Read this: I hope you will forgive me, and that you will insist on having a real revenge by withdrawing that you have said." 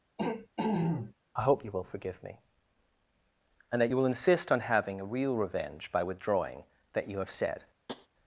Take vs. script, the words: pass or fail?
pass